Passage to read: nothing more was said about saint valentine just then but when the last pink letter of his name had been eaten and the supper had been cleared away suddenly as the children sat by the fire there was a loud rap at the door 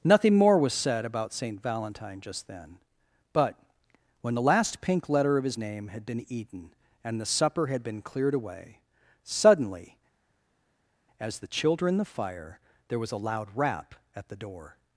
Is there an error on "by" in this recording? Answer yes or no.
yes